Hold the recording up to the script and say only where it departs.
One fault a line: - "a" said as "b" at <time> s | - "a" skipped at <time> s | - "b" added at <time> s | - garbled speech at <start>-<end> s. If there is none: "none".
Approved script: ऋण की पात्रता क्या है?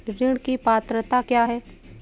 none